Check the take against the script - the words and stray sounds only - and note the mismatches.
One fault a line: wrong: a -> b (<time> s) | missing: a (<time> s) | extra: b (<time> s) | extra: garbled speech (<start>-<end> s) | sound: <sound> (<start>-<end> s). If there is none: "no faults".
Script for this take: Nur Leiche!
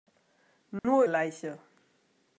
sound: dropout (0.8-0.8 s)